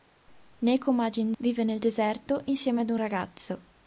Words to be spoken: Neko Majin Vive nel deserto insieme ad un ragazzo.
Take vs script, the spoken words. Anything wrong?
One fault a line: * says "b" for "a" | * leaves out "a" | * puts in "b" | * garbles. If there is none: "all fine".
all fine